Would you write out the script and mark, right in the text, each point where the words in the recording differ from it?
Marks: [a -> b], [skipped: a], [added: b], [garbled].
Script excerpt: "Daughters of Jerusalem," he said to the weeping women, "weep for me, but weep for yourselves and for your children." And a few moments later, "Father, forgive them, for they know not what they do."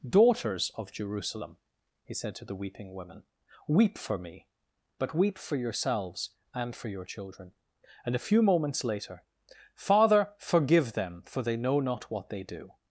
"Daughters of Jerusalem," he said to the weeping women, "weep for me, but weep for yourselves and for your children." And a few moments later, "Father, forgive them, for they know not what they do."